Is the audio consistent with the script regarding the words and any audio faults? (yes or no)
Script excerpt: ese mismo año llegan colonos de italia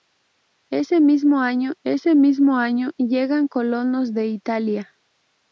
no